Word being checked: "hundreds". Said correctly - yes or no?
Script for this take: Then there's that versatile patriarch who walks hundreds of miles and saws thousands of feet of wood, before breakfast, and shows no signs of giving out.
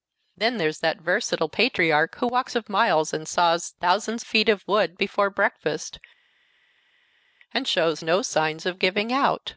no